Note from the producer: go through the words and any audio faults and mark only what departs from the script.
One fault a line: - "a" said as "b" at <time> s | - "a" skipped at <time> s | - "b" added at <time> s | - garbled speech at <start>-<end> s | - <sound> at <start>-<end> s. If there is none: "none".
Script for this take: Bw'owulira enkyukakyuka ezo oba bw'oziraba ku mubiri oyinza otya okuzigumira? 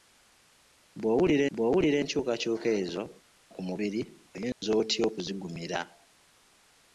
- "bw'owulira" added at 1.5 s
- "oba bw'oziraba" skipped at 3.0 s
- dropout at 4.5-4.6 s